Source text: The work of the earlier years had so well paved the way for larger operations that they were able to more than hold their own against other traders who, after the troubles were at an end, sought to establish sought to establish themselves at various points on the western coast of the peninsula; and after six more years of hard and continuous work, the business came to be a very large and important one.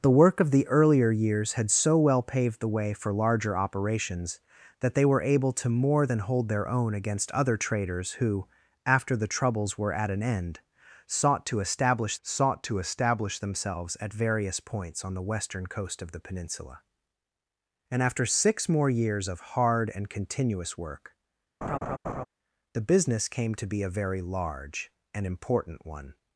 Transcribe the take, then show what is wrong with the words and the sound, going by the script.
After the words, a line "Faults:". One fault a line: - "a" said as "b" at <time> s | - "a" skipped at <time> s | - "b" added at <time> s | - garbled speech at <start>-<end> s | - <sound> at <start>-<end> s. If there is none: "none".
The work of the earlier years had so well paved the way for larger operations that they were able to more than hold their own against other traders who, after the troubles were at an end, sought to establish sought to establish themselves at various points on the western coast of the peninsula; and after six more years of hard and continuous work, the business came to be a very large and important one.
Faults:
- laugh at 21.6-22.3 s